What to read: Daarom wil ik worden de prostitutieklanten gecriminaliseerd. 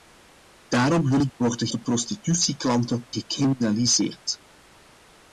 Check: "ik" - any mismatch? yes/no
no